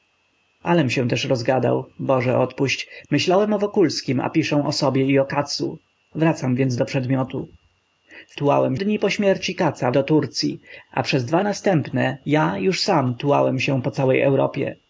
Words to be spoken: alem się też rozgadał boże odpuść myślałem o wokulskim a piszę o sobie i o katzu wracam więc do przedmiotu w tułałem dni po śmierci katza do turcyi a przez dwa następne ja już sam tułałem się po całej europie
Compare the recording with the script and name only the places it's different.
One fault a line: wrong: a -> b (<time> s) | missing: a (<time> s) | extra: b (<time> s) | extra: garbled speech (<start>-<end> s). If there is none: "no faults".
no faults